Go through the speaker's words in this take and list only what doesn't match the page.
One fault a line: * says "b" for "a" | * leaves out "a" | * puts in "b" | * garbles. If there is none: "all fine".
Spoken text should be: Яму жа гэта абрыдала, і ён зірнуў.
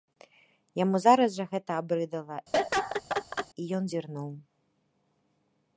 * puts in "зараз"